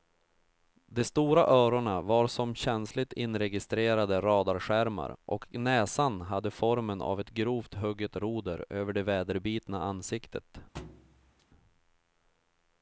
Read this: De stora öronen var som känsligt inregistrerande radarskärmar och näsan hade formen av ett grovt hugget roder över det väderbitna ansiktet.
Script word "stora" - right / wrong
right